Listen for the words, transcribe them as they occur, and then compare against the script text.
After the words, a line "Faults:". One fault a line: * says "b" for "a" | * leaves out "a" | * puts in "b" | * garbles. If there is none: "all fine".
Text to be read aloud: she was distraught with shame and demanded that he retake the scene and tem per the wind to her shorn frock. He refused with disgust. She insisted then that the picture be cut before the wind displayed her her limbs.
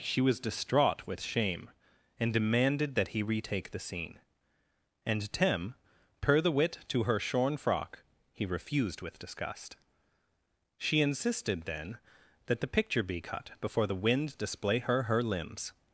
she was distraught with shame and demanded that he retake the scene and tem per the wit to her shorn frock. He refused with disgust. She insisted then that the picture be cut before the wind display her her limbs.
Faults:
* says "wit" for "wind"
* says "display" for "displayed"